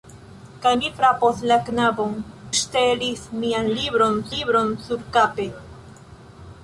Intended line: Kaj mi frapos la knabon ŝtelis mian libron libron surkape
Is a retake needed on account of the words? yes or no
no